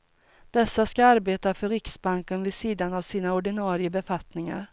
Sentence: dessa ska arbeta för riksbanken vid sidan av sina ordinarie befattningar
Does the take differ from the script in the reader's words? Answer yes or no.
no